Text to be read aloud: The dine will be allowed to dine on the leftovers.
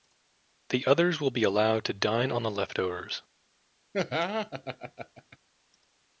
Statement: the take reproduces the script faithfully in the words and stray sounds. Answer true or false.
false